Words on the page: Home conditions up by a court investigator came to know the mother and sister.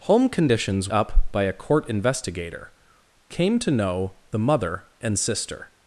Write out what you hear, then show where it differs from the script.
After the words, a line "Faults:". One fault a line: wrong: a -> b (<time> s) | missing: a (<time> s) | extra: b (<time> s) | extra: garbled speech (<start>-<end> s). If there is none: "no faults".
Home conditions up by a court investigator came to know the mother and sister.
Faults:
no faults